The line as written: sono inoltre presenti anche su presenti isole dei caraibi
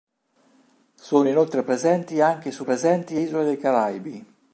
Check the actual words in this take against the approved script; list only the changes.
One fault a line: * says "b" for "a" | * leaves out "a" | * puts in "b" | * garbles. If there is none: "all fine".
all fine